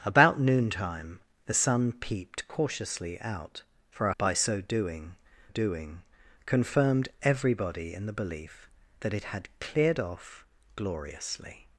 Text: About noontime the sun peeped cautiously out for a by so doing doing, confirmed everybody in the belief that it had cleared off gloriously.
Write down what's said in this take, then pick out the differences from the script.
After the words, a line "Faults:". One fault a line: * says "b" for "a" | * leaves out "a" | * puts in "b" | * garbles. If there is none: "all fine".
About noontime the sun peeped cautiously out for a by so doing doing, confirmed everybody in the belief that it had cleared off gloriously.
Faults:
all fine